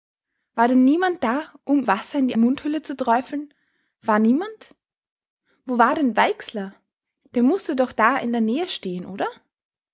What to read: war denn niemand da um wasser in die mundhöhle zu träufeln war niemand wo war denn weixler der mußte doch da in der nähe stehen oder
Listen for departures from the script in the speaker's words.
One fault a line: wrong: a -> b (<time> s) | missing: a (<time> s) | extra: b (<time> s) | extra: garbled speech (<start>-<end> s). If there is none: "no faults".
no faults